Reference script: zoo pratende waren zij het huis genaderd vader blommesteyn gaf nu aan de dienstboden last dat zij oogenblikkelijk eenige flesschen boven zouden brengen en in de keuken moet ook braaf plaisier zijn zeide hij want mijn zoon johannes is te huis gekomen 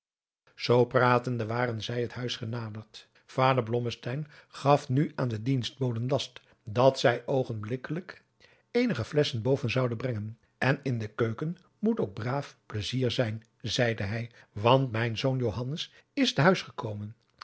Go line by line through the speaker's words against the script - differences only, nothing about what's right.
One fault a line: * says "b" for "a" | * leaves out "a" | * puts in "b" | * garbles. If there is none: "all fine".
all fine